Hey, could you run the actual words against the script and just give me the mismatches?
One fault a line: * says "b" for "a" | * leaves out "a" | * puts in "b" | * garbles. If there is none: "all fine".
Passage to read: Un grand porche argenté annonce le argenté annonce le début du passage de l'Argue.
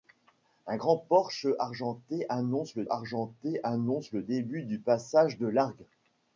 all fine